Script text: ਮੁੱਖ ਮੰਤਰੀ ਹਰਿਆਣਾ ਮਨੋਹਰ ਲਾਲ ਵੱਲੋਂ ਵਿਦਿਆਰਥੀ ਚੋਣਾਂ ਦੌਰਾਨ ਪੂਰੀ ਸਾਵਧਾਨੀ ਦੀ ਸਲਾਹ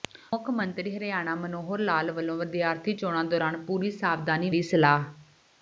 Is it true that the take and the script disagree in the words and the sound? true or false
false